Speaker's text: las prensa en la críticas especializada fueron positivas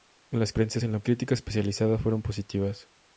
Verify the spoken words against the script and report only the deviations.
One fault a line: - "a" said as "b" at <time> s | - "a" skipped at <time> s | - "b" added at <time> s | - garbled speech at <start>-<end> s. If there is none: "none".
none